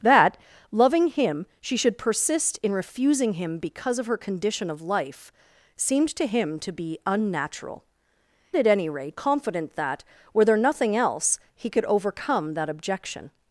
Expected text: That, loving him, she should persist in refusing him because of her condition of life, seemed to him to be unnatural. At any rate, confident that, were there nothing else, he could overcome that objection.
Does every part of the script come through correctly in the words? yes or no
yes